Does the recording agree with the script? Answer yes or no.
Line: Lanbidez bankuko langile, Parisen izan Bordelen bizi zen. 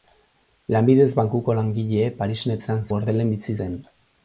yes